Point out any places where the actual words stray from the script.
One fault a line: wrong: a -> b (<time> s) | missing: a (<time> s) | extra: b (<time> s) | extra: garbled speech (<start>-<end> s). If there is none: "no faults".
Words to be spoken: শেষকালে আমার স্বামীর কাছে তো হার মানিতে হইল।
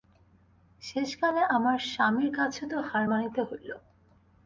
no faults